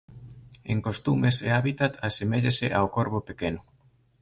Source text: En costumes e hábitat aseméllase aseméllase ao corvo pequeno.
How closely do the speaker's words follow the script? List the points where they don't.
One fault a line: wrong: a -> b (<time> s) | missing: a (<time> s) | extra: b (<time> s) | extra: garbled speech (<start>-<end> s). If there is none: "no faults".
missing: aseméllase (2.7 s)